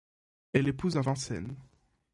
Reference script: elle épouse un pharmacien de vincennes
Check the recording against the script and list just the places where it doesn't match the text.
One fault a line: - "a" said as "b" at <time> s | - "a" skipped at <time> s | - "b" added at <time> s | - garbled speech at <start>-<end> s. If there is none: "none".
- "pharmacien de" skipped at 1.0 s